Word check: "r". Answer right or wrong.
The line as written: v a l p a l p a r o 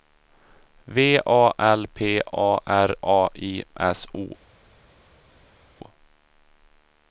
wrong